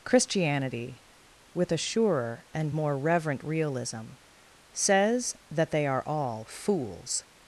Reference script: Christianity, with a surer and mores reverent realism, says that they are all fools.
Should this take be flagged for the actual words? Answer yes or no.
yes